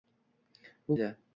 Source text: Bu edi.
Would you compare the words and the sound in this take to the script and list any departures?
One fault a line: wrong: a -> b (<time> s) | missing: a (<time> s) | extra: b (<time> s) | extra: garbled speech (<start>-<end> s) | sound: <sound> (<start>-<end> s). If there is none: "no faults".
no faults